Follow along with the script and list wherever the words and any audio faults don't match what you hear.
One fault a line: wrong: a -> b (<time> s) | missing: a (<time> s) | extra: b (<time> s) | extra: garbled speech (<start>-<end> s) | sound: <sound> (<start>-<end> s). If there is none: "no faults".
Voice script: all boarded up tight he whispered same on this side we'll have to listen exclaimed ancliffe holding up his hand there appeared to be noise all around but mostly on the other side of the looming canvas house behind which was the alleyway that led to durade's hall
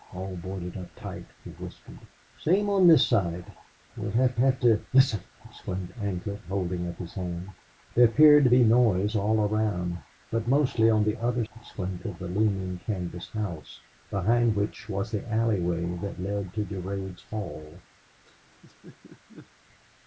extra: have (4.3 s)
wrong: side -> exclaimed (11.5 s)
sound: laugh (18.2-19.5 s)